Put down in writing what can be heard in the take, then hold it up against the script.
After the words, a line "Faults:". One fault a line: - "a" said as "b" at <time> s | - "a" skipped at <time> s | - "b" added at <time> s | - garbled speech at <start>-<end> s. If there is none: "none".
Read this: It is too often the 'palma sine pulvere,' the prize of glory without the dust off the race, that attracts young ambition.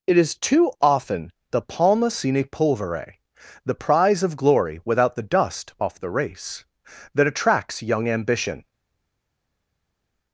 It is too often the 'palma sine pulvere,' the prize of glory without the dust off the race, that attracts young ambition.
Faults:
none